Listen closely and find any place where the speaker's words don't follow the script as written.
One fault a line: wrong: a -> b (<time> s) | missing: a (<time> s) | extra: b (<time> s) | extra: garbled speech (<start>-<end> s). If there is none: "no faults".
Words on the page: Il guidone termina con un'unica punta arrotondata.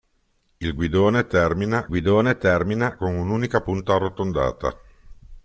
extra: guidone termina (1.9 s)